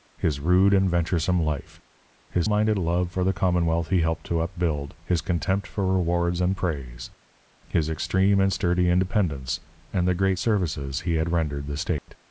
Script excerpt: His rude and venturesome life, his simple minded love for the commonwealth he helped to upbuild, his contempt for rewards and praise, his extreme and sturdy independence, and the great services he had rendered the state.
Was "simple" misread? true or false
true